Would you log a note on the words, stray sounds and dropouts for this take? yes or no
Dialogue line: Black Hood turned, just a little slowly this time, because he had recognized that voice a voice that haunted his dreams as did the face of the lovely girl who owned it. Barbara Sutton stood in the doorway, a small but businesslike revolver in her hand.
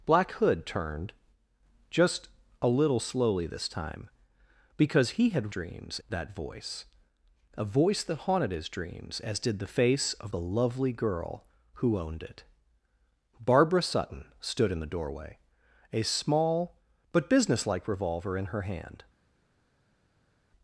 yes